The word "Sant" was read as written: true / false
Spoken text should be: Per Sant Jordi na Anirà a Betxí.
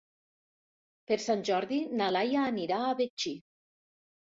true